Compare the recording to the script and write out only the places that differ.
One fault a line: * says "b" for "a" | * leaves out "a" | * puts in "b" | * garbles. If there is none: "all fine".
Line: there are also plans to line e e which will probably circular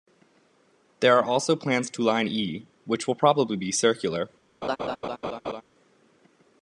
* leaves out "e"
* puts in "be"